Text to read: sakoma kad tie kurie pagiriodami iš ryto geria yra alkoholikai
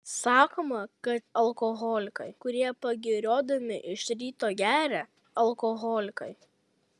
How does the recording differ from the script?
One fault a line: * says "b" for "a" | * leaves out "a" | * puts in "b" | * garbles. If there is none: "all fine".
* says "alkoholikai" for "tie"
* leaves out "yra"